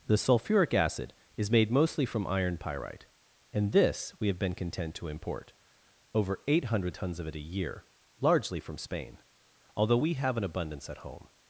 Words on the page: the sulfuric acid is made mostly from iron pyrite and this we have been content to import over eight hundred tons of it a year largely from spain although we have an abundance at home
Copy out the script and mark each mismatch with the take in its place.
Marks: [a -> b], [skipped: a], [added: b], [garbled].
the sulfuric acid is made mostly from iron pyrite and this we have been content to import over eight hundred tons of it a year largely from spain although we have an abundance at home